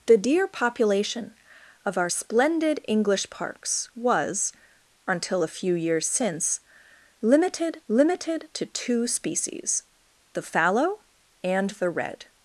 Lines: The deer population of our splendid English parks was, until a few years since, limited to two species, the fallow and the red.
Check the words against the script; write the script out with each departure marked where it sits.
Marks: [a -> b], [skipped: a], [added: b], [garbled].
The deer population of our splendid English parks was, until a few years since, limited [added: limited] to two species, the fallow and the red.